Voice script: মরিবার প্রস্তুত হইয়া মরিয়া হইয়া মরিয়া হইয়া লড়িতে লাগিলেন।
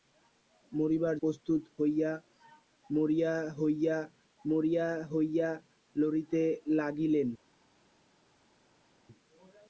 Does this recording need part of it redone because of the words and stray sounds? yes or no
no